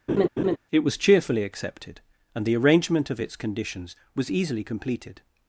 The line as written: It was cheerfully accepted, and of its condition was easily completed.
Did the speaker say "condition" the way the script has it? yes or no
no